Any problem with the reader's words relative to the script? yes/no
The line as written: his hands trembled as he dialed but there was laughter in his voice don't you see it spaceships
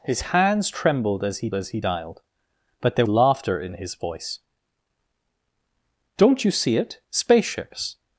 yes